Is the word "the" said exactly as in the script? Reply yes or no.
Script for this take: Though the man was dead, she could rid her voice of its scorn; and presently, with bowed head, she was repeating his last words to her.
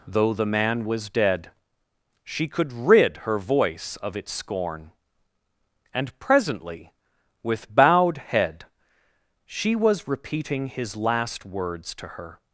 yes